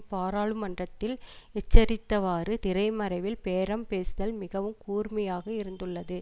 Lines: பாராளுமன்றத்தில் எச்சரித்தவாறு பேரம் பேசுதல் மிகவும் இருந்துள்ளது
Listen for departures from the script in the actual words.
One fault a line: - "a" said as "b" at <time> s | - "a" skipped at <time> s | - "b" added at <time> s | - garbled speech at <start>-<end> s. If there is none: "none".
- "திரைமறைவில்" added at 2.6 s
- "கூர்மையாக" added at 4.9 s